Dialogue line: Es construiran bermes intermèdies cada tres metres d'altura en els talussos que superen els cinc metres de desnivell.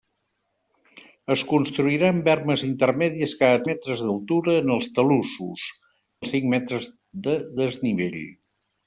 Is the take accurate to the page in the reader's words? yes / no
no